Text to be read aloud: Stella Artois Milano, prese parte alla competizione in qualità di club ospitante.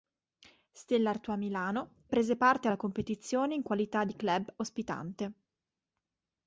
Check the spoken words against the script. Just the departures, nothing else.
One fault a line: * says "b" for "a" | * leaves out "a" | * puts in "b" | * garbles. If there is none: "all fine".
all fine